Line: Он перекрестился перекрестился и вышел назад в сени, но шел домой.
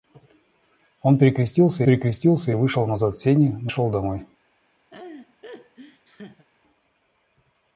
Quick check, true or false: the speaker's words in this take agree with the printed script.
true